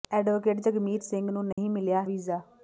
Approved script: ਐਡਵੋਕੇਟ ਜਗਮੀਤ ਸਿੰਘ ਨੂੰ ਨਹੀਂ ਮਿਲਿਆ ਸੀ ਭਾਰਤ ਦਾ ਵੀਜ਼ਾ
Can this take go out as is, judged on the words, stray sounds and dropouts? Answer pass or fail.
fail